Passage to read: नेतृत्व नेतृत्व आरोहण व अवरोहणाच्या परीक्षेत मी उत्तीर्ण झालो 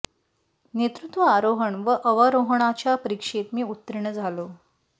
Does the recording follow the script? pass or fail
fail